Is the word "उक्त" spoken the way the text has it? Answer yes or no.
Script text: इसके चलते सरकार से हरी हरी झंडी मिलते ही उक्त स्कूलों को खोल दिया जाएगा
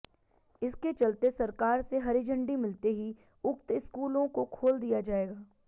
yes